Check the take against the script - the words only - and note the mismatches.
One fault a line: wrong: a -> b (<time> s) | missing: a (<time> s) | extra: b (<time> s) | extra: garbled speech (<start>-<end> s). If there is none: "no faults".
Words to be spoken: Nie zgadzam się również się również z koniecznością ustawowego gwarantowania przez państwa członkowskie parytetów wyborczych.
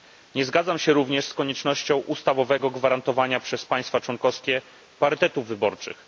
missing: się również (1.2 s)